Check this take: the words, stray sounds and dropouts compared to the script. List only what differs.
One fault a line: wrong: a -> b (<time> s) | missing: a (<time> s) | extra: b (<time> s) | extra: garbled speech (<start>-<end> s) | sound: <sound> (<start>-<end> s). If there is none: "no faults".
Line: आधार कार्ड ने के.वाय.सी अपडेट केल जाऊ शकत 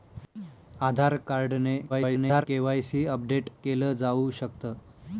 extra: garbled speech (1.9-2.5 s)